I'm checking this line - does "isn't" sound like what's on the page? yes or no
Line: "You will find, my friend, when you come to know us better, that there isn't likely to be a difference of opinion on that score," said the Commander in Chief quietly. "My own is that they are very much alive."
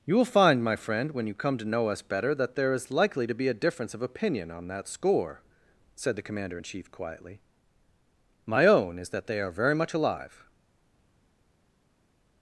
no